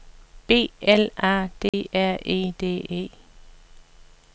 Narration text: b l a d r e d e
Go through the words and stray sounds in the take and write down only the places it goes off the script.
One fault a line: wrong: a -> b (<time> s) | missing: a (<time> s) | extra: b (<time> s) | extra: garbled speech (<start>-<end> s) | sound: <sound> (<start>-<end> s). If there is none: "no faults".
sound: dropout (1.7-1.7 s)